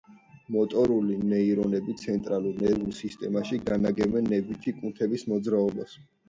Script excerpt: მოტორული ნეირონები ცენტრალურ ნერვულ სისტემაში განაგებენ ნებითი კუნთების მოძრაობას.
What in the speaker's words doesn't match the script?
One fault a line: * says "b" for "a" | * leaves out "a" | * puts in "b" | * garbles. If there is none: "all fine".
all fine